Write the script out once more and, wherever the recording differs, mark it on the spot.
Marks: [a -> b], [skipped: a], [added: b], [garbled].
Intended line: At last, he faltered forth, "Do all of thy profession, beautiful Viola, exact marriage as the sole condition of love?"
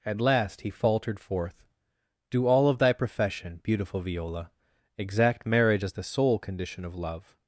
At last, he faltered forth, "Do all of thy profession, beautiful Viola, exact marriage as the sole condition of love?"